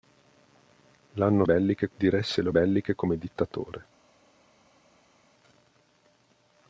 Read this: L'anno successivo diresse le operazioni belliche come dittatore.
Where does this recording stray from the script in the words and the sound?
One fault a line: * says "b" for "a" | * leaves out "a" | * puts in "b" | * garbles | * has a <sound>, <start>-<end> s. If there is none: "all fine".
* says "belliche" for "successivo"
* leaves out "operazioni"